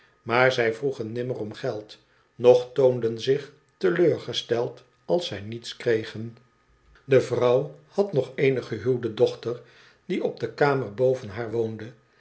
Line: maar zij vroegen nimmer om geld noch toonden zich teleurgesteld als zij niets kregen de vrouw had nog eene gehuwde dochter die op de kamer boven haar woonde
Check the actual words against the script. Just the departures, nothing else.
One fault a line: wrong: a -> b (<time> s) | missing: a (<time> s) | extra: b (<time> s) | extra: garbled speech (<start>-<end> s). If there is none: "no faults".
no faults